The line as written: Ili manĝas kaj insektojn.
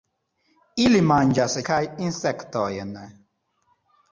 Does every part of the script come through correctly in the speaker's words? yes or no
yes